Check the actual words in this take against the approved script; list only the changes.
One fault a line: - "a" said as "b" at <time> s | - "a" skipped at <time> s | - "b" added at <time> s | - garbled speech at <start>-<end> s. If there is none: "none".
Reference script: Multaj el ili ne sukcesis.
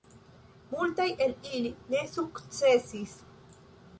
none